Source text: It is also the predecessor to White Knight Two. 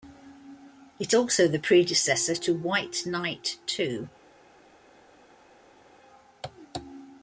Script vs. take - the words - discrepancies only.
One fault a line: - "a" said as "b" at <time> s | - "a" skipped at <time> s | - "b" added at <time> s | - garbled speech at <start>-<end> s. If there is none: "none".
- "is" skipped at 1.1 s